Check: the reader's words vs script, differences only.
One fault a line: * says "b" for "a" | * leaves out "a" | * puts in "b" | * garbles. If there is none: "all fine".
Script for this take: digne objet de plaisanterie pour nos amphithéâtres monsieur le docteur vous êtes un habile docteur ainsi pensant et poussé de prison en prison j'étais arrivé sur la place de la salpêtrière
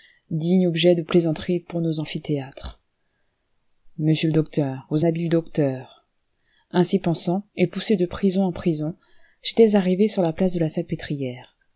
* leaves out "êtes un"